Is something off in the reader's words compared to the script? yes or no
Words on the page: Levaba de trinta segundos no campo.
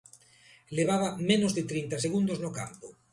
yes